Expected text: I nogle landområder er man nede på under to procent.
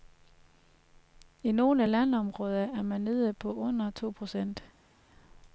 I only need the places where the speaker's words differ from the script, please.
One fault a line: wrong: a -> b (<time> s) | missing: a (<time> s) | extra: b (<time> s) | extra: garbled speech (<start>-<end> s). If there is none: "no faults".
no faults